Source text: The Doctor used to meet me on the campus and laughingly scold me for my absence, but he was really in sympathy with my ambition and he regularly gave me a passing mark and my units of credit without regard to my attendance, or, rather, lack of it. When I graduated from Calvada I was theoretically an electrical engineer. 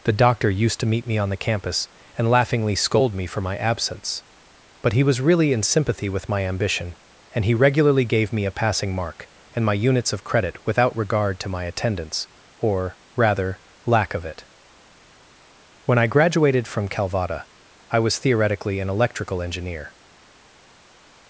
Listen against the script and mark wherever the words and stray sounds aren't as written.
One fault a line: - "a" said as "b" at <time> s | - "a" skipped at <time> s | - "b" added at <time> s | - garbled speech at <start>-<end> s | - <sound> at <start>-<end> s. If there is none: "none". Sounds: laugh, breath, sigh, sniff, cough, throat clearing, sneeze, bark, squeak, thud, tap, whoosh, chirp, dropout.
none